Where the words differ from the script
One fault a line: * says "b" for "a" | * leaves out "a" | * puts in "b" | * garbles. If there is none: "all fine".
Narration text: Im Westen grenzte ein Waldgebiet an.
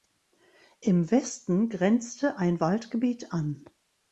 all fine